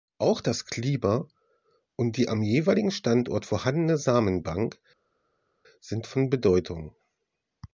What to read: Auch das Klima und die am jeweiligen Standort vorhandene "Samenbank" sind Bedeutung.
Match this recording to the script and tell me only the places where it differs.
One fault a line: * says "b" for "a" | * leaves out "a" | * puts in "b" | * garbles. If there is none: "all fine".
* puts in "von"